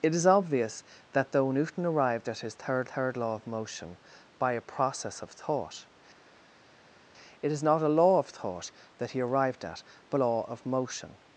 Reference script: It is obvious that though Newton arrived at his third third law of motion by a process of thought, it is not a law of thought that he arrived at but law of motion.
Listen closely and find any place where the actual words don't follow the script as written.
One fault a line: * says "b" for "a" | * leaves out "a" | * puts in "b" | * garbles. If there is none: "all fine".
all fine